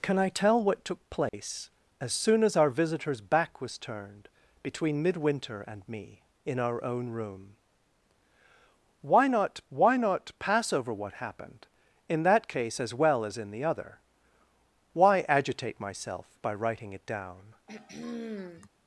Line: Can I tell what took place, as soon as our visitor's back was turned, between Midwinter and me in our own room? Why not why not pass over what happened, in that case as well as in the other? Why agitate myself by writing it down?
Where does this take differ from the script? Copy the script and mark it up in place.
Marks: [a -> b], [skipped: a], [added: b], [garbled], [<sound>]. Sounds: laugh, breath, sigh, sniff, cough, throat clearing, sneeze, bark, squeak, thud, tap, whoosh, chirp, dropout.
Can I tell what took place, [dropout] as soon as our visitor's back was turned, between Midwinter and me in our own room? Why not why not pass over what happened, in that case as well as in the other? Why agitate myself by writing it down? [throat clearing]